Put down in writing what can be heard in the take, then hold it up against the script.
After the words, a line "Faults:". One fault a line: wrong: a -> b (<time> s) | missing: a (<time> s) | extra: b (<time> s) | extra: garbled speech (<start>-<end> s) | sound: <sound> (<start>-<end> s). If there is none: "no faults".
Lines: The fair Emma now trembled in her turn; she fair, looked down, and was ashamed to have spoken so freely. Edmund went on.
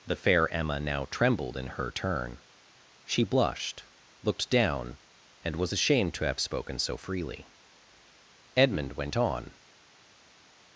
The fair Emma now trembled in her turn; she blushed, looked down, and was ashamed to have spoken so freely. Edmund went on.
Faults:
wrong: fair -> blushed (3.2 s)